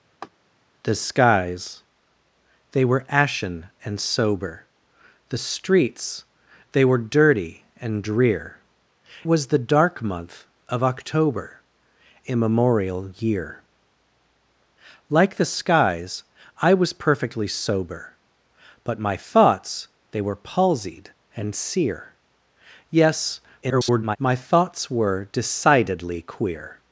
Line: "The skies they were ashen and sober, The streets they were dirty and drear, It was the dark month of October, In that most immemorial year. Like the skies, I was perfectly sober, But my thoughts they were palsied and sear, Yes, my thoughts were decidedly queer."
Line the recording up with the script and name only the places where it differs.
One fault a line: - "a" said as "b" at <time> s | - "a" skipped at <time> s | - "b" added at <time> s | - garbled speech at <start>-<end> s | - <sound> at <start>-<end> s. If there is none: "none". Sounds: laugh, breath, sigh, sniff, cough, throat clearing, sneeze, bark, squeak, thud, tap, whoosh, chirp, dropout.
- laugh at 0.2-0.3 s
- "It" skipped at 8.6 s
- "In that most" skipped at 11.6 s
- garbled speech at 23.6-24.2 s